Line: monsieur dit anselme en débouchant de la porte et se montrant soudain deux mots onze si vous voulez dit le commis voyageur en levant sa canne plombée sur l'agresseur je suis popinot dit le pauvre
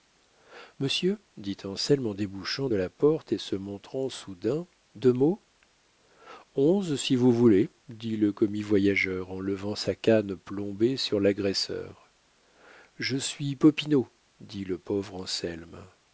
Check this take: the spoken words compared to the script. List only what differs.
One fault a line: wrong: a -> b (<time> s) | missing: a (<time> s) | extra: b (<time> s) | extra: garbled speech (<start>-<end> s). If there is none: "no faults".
no faults